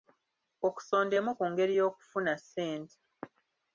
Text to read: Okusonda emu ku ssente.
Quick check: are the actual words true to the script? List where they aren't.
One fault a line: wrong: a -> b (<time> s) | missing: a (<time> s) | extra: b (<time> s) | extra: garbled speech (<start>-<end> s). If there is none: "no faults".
extra: ngeri y'okufuna (1.5 s)